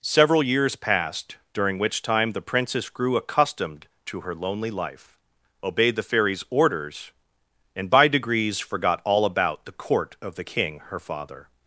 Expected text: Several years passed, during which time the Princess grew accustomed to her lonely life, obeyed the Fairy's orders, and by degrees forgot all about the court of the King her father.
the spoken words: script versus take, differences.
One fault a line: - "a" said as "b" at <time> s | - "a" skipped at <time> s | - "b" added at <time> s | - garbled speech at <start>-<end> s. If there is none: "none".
none